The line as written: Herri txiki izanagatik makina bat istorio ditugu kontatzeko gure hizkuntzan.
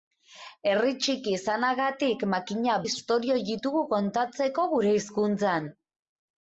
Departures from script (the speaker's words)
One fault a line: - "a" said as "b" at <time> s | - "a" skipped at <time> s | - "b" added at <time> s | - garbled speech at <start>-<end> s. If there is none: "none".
- "bat" skipped at 2.8 s